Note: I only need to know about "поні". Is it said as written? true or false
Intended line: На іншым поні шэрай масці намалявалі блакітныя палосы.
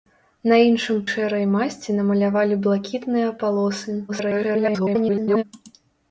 false